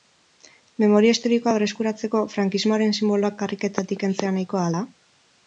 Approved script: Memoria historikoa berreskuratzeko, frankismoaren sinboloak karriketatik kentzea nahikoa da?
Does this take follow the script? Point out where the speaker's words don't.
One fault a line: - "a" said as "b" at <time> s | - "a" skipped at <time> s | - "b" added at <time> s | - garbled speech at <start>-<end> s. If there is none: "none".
none